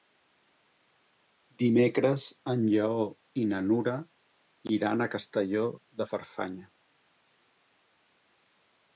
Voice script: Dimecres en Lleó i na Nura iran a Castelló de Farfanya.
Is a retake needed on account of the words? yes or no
no